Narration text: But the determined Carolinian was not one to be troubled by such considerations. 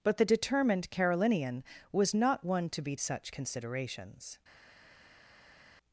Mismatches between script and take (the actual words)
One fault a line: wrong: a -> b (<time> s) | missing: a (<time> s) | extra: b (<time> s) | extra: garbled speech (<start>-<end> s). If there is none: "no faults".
missing: troubled by (3.0 s)